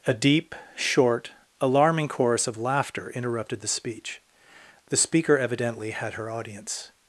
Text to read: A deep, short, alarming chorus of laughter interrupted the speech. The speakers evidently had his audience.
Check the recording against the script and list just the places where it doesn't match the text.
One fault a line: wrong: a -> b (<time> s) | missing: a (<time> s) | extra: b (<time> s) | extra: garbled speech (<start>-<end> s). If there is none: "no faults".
wrong: speakers -> speaker (5.0 s)
wrong: his -> her (6.1 s)